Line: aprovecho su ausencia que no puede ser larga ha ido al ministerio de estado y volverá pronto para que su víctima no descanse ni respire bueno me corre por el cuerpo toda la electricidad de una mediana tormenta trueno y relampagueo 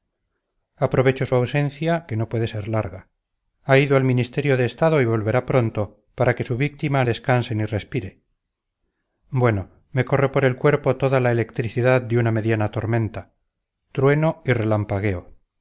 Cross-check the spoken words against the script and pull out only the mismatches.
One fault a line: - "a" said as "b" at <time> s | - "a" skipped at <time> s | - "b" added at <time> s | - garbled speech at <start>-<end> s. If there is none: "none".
- "no" skipped at 7.0 s